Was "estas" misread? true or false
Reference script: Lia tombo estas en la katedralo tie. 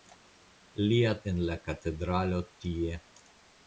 true